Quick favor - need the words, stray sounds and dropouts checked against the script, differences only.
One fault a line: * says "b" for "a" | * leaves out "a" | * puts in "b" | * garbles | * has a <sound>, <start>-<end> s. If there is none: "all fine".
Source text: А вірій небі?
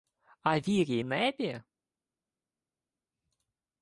all fine